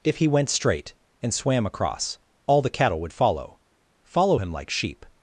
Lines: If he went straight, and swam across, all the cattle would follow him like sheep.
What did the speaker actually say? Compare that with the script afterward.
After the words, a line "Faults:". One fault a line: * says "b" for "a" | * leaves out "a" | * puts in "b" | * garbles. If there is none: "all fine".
If he went straight, and swam across, all the cattle would follow follow him like sheep.
Faults:
* puts in "follow"